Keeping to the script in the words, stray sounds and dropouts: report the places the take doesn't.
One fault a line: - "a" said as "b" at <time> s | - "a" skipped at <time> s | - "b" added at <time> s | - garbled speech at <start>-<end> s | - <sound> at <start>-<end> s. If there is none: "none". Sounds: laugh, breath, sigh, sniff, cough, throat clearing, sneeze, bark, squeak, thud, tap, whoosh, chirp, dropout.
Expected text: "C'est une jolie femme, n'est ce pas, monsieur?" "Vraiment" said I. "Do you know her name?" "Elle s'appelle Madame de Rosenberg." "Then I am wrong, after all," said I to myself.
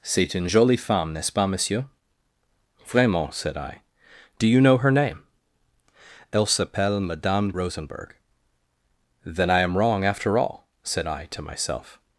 - "de" skipped at 7.5 s